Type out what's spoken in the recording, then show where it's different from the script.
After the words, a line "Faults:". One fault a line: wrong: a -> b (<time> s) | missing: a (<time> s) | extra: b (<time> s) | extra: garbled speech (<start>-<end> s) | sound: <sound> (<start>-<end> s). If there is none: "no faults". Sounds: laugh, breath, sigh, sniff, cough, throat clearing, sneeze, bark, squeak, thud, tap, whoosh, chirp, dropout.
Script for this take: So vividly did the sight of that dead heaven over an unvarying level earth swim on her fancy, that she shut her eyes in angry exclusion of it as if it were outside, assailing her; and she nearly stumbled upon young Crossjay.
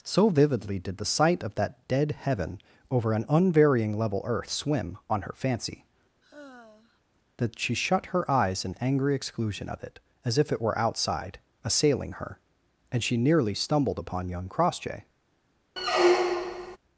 So vividly did the sight of that dead heaven over an unvarying level earth swim on her fancy, that she shut her eyes in angry exclusion of it as if it were outside, assailing her; and she nearly stumbled upon young Crossjay.
Faults:
sound: sigh (6.2-7.0 s)
sound: squeak (15.8-16.8 s)